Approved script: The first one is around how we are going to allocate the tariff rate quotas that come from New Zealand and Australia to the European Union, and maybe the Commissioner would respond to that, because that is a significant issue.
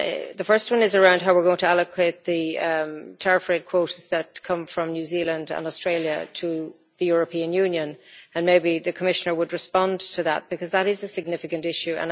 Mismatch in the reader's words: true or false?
false